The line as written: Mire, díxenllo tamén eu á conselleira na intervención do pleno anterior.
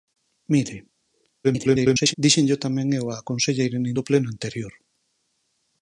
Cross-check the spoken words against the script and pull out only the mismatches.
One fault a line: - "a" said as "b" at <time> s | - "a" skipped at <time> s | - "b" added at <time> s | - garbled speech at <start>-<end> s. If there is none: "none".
- garbled speech at 1.4-2.1 s
- "intervención" skipped at 3.9 s